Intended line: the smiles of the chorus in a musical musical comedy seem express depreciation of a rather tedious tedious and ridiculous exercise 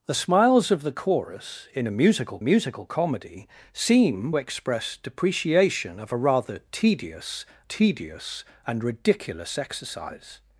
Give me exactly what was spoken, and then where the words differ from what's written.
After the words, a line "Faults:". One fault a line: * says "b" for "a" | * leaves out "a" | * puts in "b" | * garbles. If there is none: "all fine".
the smiles of the chorus in a musical musical comedy seem express depreciation of a rather tedious tedious and ridiculous exercise
Faults:
all fine